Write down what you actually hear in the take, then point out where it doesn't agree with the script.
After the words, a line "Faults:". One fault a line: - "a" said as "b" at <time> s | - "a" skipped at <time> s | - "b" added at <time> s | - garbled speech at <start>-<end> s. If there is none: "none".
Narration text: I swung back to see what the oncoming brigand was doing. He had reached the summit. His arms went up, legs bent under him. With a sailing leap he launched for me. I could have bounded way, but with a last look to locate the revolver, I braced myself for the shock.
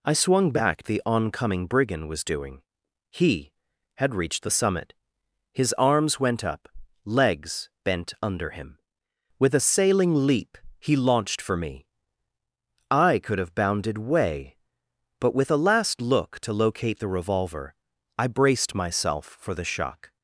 I swung back the oncoming brigand was doing. He had reached the summit. His arms went up, legs bent under him. With a sailing leap he launched for me. I could have bounded way, but with a last look to locate the revolver, I braced myself for the shock.
Faults:
- "to see what" skipped at 0.8 s